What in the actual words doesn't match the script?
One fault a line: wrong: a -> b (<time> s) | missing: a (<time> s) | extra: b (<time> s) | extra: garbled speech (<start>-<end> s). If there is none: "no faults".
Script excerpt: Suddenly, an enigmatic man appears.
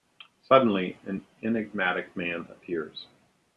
no faults